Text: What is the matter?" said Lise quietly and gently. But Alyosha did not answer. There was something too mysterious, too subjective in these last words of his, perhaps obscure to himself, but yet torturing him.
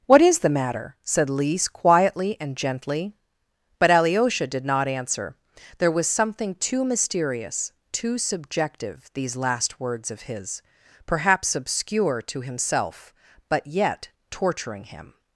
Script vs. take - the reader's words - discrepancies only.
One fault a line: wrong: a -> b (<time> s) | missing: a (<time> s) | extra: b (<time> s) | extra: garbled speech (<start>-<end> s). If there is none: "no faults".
missing: in (9.1 s)